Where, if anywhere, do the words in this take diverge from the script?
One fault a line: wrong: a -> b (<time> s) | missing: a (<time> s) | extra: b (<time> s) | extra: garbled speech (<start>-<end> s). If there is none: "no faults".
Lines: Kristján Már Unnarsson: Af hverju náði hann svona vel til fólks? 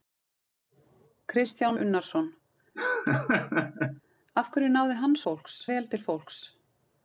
missing: Már (1.8 s)
wrong: svona -> fólks (5.3 s)